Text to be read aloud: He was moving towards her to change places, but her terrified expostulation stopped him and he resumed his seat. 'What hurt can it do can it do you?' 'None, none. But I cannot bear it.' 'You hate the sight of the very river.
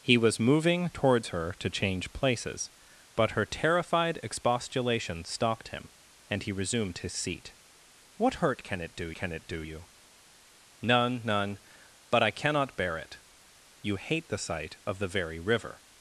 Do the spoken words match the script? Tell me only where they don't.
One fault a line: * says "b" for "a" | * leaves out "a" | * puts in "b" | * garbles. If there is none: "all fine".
all fine